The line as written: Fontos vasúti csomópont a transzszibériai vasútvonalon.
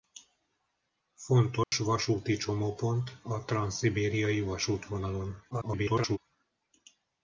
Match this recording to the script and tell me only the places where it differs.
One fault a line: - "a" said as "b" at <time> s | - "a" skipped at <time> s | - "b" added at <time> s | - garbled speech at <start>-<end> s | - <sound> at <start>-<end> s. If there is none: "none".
- dropout at 1.6-1.7 s
- garbled speech at 5.5-6.2 s